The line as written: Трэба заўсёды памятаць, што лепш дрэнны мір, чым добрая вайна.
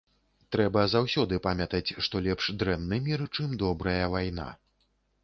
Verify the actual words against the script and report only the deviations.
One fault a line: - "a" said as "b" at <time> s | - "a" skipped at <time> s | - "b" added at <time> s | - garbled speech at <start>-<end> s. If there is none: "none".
none